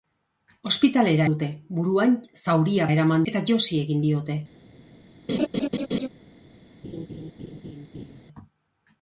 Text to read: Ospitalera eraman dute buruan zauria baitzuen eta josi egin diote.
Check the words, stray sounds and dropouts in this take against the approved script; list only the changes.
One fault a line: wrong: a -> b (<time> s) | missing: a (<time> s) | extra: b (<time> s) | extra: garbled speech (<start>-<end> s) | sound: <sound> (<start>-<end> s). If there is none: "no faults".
missing: eraman (1.3 s)
wrong: baitzuen -> eraman (2.9 s)
sound: laugh (5.3-6.1 s)
sound: laugh (6.8-8.2 s)